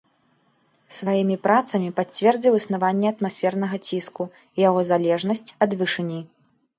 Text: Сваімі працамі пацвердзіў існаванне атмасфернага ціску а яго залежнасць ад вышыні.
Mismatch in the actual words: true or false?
true